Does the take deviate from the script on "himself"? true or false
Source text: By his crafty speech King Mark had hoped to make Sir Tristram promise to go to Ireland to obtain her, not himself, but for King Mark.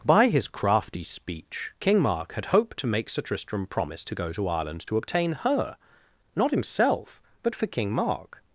false